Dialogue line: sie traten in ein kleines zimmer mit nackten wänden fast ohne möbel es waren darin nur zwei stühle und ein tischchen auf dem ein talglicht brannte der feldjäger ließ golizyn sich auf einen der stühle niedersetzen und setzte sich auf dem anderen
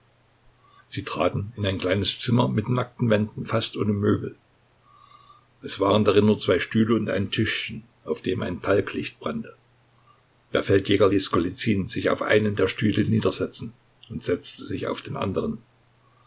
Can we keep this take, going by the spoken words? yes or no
no